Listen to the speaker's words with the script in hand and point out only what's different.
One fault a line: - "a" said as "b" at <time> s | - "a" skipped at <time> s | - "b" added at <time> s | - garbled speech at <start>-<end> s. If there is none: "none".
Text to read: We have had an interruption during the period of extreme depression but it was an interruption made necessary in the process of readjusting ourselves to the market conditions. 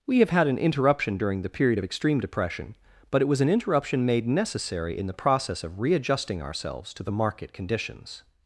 none